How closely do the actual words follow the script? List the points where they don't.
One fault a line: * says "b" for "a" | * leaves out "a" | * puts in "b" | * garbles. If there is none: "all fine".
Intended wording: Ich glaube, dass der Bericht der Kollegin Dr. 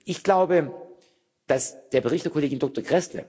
all fine